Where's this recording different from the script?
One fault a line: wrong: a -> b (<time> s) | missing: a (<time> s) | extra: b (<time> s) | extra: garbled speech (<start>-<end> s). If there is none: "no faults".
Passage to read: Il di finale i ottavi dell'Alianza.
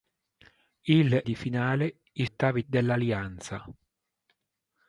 no faults